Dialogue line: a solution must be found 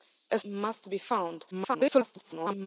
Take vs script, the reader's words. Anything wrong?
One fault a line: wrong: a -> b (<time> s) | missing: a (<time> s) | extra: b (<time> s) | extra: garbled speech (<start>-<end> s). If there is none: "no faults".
missing: solution (0.4 s)
extra: garbled speech (1.5-2.7 s)